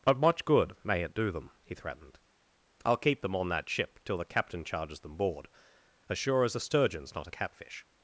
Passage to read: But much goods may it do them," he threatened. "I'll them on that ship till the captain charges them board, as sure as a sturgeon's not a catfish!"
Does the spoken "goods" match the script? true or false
false